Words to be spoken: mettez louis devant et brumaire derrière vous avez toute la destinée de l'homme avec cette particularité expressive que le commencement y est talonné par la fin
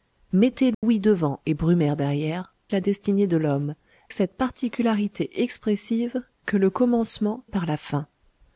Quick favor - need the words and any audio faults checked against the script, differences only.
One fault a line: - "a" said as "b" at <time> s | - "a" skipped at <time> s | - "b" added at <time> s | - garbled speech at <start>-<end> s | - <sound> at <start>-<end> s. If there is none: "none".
- dropout at 0.7-0.8 s
- "vous avez toute" skipped at 2.5 s
- "avec" skipped at 3.7 s
- "y est talonné" skipped at 7.4 s